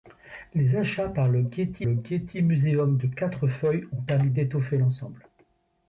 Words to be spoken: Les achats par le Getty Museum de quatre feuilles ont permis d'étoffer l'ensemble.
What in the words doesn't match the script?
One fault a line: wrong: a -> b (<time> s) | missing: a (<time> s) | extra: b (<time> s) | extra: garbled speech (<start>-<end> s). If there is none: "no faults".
extra: le Getty (1.8 s)